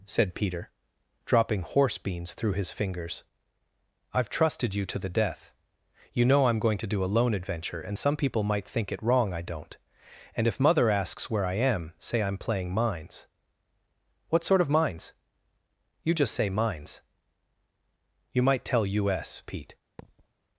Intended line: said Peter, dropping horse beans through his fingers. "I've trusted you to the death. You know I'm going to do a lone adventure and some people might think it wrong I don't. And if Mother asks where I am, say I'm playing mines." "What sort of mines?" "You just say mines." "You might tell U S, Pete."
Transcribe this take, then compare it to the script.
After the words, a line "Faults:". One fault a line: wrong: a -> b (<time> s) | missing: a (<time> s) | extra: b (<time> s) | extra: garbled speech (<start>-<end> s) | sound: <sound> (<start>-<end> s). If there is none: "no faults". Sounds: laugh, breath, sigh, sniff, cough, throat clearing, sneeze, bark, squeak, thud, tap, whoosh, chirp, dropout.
said Peter, dropping horse beans through his fingers. "I've trusted you to the death. You know I'm going to do a lone adventure and some people might think it wrong I don't. And if Mother asks where I am, say I'm playing mines." "What sort of mines?" "You just say mines." "You might tell U S, Pete."
Faults:
sound: thud (20.0-20.3 s)